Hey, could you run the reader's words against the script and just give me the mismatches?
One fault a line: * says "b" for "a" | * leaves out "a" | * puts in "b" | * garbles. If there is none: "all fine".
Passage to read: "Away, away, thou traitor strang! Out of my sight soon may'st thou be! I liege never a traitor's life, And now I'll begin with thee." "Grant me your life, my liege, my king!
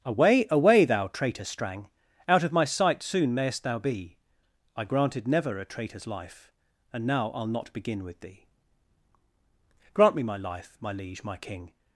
* says "granted" for "liege"
* puts in "not"
* says "my" for "your"